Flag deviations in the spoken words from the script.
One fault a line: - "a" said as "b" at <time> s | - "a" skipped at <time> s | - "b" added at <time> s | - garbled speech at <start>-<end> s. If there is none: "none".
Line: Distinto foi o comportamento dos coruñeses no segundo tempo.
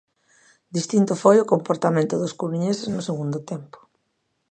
none